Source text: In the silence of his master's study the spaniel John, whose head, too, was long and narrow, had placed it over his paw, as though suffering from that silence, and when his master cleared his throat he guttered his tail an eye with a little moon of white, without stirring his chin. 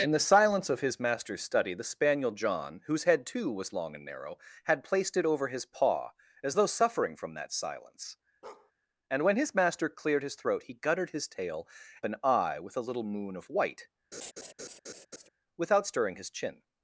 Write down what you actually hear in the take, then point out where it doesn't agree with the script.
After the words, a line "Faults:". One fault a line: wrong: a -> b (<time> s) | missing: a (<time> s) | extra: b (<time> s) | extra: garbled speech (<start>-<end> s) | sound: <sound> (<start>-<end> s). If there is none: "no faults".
In the silence of his master's study the spaniel John, whose head, too, was long and narrow, had placed it over his paw, as though suffering from that silence, and when his master cleared his throat he guttered his tail an eye with a little moon of white, without stirring his chin.
Faults:
sound: bark (8.4-8.7 s)
sound: laugh (14.1-15.3 s)